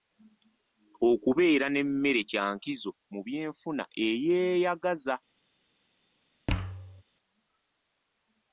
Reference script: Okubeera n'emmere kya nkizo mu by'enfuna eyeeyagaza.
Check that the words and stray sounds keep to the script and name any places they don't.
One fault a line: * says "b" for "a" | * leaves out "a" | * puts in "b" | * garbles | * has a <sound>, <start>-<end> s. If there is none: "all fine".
* has a thud, 6.5-7.0 s